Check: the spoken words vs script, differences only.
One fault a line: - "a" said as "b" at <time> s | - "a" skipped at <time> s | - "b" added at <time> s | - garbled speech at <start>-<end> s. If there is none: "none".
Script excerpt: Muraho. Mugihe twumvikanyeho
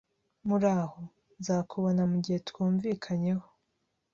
- "Nzakubona" added at 1.4 s